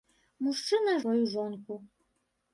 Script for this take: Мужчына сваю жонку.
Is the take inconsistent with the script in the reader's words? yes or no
no